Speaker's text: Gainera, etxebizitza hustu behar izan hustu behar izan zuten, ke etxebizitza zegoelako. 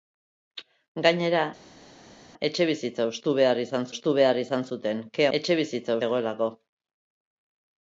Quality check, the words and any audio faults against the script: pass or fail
pass